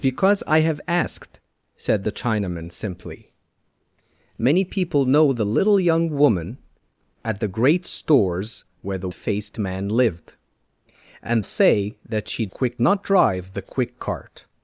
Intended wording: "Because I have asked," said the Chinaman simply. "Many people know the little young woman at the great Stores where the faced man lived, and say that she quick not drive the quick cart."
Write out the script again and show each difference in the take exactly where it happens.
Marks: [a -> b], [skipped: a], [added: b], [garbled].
"Because I have asked," said the Chinaman simply. "Many people know the little young woman at the great Stores where the faced man lived, and say that she quick not drive the quick cart."